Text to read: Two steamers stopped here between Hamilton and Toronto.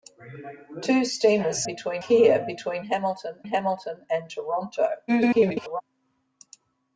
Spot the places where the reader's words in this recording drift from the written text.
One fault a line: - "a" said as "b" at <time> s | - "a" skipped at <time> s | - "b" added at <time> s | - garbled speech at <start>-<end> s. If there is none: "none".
- "stopped" said as "between" at 1.7 s
- "Hamilton" added at 3.5 s
- garbled speech at 5.1-5.8 s